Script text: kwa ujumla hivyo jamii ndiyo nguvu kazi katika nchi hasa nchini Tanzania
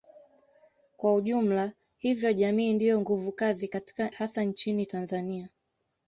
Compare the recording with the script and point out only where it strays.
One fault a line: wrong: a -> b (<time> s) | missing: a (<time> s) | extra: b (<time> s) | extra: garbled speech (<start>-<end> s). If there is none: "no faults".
missing: nchi (4.1 s)